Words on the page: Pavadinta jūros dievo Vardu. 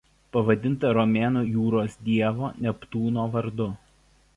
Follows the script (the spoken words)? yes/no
no